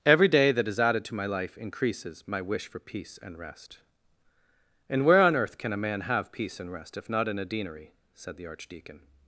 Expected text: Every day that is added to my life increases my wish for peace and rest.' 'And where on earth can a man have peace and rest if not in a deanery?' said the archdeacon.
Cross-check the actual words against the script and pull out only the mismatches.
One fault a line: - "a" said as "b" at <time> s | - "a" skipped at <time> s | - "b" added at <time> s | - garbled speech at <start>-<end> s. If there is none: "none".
none